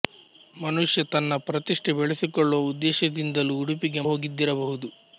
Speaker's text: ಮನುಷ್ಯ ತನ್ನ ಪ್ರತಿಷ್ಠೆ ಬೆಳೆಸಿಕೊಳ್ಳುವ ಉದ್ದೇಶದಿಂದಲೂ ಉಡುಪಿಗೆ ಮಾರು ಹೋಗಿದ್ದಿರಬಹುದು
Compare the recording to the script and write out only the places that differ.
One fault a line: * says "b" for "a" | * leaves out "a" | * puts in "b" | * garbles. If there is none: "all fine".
* leaves out "ಮಾರು"